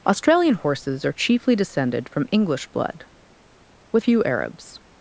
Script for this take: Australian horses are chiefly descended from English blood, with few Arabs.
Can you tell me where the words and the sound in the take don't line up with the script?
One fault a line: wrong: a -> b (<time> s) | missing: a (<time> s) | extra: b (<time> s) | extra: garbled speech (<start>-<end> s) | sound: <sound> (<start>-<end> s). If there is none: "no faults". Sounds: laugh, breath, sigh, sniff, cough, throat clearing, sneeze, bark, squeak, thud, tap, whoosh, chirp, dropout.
no faults